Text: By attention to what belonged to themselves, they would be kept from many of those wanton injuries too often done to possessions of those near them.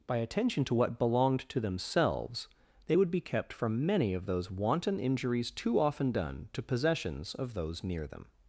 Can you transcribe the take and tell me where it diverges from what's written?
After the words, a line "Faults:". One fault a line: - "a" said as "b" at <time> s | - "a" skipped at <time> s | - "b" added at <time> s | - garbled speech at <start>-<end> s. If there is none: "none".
By attention to what belonged to themselves, they would be kept from many of those wanton injuries too often done to possessions of those near them.
Faults:
none